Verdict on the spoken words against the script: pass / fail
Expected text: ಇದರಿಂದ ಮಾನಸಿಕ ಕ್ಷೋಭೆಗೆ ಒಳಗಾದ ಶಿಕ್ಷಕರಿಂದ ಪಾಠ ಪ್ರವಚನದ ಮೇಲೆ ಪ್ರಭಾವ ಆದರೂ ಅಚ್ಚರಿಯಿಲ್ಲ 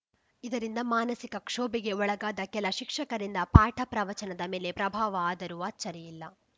fail